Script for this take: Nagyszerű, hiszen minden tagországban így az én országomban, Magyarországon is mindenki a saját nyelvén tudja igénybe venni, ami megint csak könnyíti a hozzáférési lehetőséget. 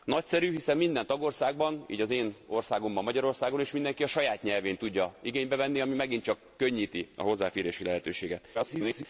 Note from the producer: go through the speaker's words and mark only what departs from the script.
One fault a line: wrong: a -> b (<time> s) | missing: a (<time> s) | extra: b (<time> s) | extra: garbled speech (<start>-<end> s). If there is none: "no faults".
extra: garbled speech (8.5-9.1 s)